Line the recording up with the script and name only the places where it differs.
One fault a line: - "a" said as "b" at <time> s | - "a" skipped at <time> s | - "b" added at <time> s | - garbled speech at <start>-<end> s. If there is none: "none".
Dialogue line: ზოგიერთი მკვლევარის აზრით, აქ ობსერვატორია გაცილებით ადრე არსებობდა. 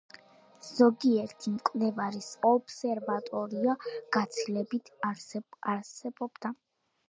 - "აზრით აქ" skipped at 2.3 s
- "ადრე" skipped at 4.9 s